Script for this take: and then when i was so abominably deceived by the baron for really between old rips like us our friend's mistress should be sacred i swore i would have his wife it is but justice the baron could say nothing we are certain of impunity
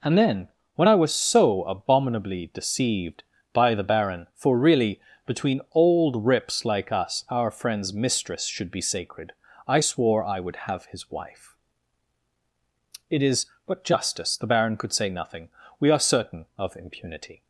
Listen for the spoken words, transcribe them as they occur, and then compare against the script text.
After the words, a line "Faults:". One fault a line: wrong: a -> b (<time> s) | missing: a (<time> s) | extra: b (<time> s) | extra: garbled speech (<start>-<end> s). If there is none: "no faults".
and then when i was so abominably deceived by the baron for really between old rips like us our friend's mistress should be sacred i swore i would have his wife it is but justice the baron could say nothing we are certain of impunity
Faults:
no faults